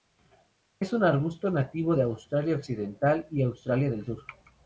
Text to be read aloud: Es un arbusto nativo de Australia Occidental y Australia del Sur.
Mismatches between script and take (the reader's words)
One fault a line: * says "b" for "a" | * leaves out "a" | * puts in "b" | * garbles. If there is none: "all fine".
all fine